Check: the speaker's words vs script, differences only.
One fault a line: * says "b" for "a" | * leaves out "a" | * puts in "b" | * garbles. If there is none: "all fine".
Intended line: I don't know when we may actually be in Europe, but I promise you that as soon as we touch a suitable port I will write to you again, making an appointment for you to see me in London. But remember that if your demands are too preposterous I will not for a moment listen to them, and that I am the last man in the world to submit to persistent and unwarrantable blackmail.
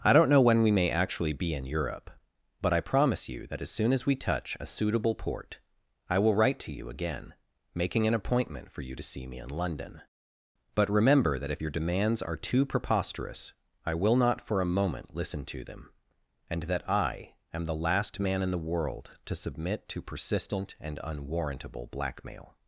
all fine